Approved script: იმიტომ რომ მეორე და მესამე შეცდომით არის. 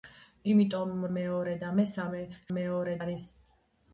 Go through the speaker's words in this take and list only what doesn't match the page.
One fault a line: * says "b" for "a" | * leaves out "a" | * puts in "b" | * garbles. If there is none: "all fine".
* leaves out "რომ"
* says "მეორე" for "შეცდომით"